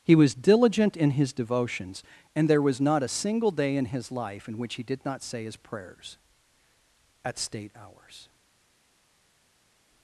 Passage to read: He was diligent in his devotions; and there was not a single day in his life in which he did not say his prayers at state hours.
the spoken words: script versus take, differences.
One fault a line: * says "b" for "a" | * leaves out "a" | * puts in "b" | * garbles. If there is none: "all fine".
all fine